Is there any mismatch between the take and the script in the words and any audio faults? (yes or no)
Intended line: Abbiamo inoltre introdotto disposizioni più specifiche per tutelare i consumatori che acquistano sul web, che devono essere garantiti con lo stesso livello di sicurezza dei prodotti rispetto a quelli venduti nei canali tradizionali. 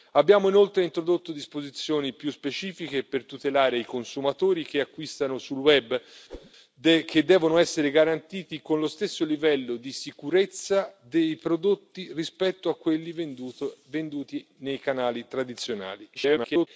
yes